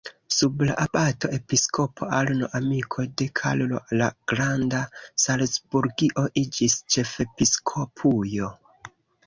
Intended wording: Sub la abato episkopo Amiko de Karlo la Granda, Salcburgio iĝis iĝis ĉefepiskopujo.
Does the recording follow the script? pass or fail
fail